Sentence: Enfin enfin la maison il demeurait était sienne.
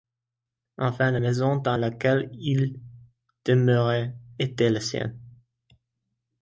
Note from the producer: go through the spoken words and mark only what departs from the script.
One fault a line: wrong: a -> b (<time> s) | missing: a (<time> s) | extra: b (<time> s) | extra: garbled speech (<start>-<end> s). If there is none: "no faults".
missing: enfin (1.1 s)
extra: dans laquelle (1.6 s)
extra: la (4.7 s)